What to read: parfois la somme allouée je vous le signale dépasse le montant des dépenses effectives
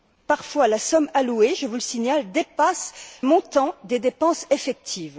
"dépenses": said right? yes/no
yes